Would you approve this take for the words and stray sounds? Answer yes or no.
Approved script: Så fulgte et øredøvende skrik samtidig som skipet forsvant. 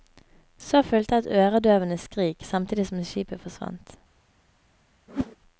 no